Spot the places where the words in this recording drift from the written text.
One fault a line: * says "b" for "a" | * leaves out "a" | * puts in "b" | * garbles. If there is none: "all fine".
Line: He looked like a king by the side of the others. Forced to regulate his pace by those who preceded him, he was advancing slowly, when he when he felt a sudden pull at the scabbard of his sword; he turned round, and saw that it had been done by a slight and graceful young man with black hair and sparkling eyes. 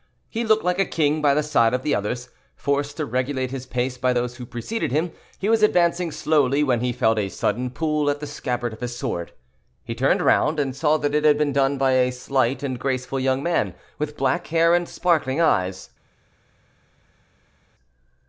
* leaves out "when he"